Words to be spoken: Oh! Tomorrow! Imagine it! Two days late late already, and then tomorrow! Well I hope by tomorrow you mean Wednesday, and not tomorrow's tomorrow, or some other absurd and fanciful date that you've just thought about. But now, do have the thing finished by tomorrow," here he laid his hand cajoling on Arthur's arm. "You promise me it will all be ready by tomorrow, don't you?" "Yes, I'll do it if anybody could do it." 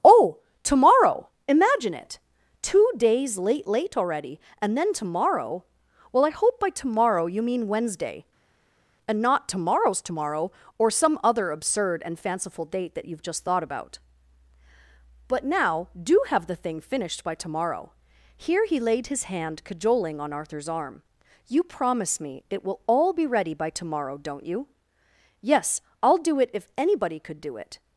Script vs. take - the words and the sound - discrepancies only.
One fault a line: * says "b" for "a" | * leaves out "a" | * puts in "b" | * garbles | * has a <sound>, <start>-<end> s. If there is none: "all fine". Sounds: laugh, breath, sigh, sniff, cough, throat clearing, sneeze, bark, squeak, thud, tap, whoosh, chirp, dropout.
all fine